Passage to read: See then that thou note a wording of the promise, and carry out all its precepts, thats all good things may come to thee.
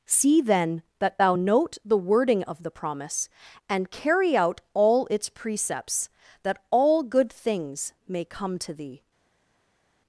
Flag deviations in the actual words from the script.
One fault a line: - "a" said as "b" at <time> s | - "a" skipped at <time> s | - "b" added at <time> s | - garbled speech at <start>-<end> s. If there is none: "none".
- "a" said as "the" at 1.8 s
- "thats" said as "that" at 6.4 s